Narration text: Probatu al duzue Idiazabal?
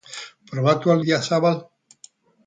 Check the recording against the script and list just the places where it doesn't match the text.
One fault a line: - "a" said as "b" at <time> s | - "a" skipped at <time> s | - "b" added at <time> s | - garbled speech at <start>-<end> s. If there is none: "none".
- "duzue" skipped at 1.0 s